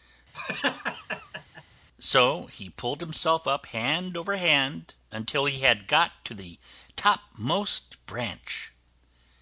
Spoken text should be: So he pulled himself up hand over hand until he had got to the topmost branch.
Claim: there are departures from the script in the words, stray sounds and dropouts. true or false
true